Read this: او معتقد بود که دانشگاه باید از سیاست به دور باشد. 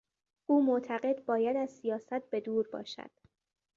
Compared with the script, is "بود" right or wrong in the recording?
wrong